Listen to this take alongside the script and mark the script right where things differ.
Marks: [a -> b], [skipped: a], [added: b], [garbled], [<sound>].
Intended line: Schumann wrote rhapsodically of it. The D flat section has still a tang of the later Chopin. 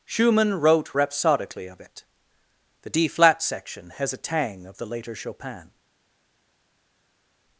Schumann wrote rhapsodically of it. The D flat section has [skipped: still] a tang of the later Chopin.